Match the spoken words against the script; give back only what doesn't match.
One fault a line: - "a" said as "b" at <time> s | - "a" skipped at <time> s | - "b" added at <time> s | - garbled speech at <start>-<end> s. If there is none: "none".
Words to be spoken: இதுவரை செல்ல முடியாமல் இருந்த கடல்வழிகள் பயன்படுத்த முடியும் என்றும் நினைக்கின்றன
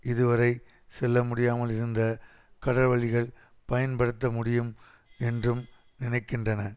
none